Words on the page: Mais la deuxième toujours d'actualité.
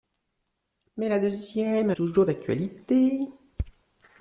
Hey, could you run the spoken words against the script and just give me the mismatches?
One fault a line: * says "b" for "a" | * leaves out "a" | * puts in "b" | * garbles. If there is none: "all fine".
all fine